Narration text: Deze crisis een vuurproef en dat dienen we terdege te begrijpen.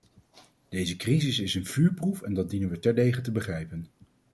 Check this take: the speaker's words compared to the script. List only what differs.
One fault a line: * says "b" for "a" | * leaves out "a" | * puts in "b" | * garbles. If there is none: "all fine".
* puts in "is"